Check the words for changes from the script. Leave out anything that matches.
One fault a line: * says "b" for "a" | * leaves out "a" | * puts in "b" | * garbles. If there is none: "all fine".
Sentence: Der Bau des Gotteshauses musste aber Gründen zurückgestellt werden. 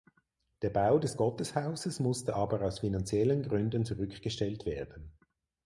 * puts in "aus finanziellen"